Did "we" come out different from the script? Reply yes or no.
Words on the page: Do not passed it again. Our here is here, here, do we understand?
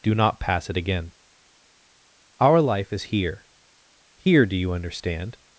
yes